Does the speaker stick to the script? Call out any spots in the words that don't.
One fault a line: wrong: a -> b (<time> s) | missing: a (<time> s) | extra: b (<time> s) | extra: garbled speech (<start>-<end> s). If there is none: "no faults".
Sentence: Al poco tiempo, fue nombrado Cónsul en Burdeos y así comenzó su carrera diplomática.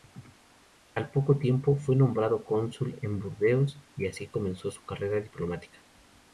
no faults